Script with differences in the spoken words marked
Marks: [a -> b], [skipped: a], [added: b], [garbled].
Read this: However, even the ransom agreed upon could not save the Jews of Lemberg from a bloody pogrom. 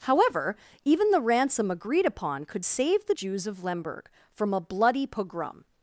However, even the ransom agreed upon could [skipped: not] save the Jews of Lemberg from a bloody pogrom.